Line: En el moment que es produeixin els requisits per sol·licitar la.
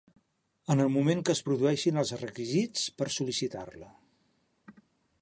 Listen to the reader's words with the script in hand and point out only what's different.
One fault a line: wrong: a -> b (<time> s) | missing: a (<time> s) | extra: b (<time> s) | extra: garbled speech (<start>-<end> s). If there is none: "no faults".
no faults